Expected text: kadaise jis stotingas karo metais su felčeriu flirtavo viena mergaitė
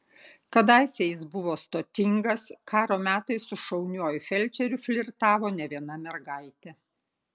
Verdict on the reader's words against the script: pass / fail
fail